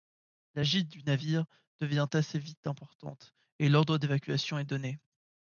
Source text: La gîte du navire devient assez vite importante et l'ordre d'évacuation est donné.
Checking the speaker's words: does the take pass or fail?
pass